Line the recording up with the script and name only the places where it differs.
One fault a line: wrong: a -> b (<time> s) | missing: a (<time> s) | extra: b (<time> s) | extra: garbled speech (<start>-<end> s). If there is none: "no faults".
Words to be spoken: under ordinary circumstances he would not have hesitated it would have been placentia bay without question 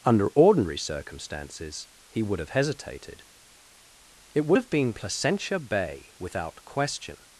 missing: not (2.4 s)